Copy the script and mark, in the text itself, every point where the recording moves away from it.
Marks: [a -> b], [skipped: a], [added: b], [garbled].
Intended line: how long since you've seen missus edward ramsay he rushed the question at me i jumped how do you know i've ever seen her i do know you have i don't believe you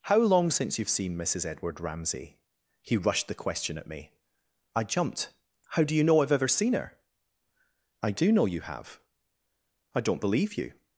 how long since you've seen missus edward ramsay he rushed the question at me i jumped how do you know i've ever seen her i do know you have i don't believe you